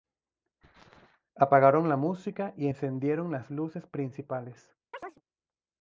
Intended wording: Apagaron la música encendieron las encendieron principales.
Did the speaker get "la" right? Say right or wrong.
right